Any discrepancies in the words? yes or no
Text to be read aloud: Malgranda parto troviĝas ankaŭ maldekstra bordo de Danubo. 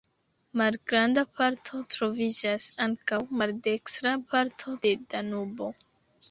yes